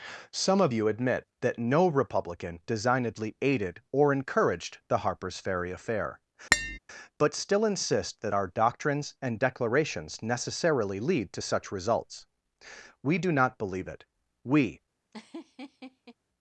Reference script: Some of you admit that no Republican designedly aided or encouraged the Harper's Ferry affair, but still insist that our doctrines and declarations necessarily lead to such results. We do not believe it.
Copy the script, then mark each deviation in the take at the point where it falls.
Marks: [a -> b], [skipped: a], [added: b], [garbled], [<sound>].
Some of you admit that no Republican designedly aided or encouraged the Harper's Ferry affair, [tap] but still insist that our doctrines and declarations necessarily lead to such results. We do not believe it. [added: We] [laugh]